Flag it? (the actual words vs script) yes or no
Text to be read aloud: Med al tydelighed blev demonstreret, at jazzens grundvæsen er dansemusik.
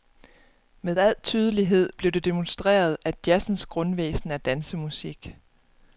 yes